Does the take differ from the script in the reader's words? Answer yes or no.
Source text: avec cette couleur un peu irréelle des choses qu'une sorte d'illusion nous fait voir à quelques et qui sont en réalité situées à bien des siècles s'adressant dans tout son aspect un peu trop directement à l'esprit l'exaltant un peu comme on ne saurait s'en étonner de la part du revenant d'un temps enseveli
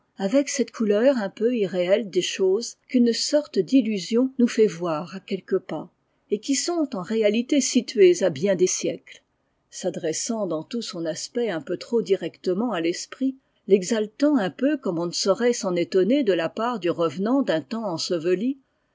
yes